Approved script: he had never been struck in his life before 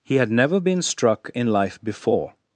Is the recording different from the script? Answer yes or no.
yes